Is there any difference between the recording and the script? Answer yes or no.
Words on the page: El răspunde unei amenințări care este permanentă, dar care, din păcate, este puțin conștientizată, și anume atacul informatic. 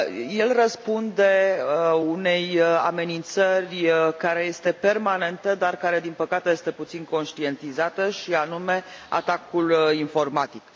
no